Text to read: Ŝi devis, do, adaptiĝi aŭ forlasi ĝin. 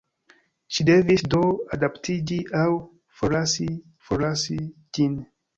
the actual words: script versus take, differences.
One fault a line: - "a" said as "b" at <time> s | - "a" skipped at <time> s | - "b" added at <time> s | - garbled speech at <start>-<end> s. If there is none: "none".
- "forlasi" added at 4.1 s